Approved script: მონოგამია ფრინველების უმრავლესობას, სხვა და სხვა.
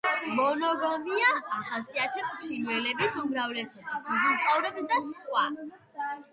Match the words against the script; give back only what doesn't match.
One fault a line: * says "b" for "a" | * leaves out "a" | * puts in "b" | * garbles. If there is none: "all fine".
* puts in "ახასიათებს"
* says "ძუძუმწოვრებს" for "სხვა"